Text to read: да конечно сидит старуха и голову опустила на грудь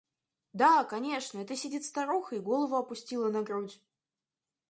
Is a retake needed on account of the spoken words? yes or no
yes